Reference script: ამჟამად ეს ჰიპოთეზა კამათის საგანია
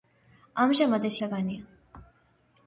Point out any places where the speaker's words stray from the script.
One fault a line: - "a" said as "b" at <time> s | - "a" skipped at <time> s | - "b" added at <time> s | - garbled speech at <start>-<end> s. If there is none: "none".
- "ჰიპოთეზა კამათის" skipped at 1.2 s